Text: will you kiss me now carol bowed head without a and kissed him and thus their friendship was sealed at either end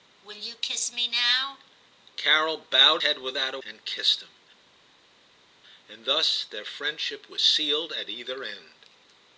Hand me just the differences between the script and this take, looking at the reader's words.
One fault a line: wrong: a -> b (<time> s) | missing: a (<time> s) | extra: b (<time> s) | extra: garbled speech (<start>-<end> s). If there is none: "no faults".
no faults